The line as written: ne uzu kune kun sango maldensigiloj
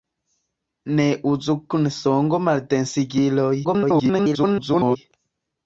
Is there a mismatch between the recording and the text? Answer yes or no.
yes